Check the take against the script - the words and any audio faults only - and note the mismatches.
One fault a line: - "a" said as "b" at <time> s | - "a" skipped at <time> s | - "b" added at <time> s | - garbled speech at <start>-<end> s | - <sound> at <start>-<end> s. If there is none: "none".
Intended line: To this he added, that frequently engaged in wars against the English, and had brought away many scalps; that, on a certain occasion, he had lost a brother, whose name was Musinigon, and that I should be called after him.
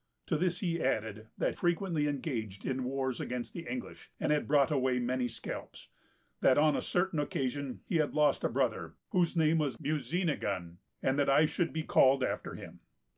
none